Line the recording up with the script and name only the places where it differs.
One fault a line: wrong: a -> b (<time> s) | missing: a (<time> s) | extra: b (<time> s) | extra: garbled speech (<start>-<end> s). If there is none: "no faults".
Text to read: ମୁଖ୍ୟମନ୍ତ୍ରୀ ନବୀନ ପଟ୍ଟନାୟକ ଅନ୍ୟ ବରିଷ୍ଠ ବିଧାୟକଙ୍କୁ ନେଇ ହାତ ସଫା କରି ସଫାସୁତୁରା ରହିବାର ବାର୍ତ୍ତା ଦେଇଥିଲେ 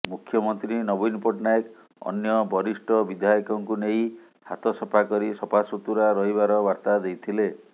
no faults